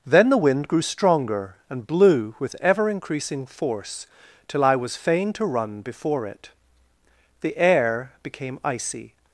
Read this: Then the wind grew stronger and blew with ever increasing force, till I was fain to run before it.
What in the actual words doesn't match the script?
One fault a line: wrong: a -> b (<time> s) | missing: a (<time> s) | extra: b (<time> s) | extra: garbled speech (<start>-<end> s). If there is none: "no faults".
extra: The air became icy (7.4 s)